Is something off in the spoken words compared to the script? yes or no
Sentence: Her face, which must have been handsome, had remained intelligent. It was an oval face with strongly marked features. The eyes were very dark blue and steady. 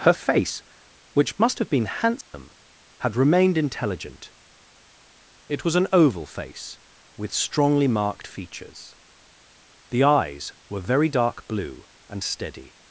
no